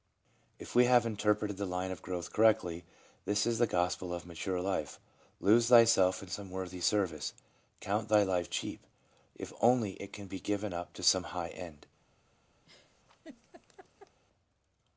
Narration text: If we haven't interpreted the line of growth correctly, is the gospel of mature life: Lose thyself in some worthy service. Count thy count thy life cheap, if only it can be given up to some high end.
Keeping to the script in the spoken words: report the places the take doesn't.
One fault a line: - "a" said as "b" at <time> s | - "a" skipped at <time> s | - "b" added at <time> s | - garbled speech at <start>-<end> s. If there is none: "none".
- "haven't" said as "have" at 0.8 s
- "this" added at 3.2 s
- "count thy" skipped at 8.2 s